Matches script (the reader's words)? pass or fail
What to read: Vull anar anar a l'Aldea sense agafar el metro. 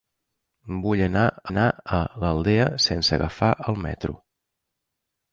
pass